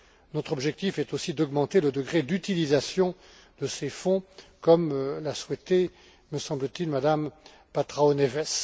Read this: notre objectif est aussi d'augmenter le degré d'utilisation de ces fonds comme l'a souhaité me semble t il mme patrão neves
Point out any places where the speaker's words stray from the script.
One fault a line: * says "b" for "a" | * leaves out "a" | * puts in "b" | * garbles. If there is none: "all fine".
all fine